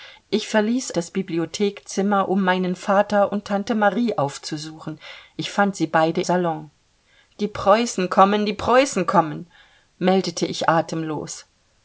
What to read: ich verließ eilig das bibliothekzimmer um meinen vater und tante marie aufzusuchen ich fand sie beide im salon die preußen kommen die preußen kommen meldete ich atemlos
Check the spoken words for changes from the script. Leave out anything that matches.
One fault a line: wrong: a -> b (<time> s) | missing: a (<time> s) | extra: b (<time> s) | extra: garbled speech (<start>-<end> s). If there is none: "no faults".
missing: eilig (1.0 s)
missing: im (6.2 s)